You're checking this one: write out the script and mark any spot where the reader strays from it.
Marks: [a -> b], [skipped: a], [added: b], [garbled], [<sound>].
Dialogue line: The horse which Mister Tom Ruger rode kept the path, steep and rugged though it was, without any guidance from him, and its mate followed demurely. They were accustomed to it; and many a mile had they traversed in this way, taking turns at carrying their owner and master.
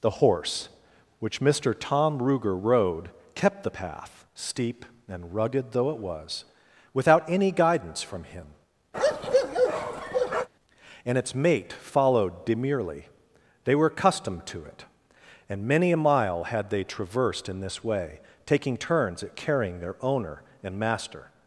The horse which Mister Tom Ruger rode kept the path, steep and rugged though it was, without any guidance from him, [bark] and its mate followed demurely. They were accustomed to it; and many a mile had they traversed in this way, taking turns at carrying their owner and master.